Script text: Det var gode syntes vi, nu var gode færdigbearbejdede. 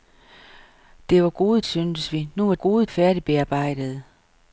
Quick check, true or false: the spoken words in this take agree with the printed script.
true